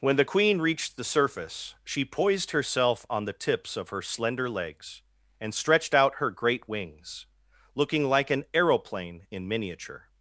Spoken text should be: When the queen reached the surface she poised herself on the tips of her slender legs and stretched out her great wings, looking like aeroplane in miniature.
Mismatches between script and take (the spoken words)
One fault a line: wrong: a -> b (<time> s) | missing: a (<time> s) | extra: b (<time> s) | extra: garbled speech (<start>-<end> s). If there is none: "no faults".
extra: an (8.3 s)